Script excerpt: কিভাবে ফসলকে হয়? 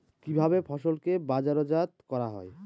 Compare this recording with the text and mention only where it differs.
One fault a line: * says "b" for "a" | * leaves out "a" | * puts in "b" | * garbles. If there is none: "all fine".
* puts in "বাজারজাত করা"